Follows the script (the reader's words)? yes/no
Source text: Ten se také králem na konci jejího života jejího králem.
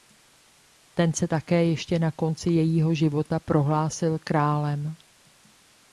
no